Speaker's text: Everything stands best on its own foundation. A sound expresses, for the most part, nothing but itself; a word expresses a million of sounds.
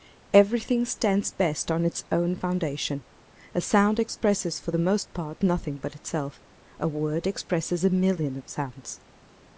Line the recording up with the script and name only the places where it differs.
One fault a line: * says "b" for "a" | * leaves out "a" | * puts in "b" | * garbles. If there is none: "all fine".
all fine